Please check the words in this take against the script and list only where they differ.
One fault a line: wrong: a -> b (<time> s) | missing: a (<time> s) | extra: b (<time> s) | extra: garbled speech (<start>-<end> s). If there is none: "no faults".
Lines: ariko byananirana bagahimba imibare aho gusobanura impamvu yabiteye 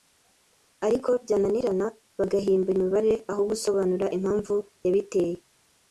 no faults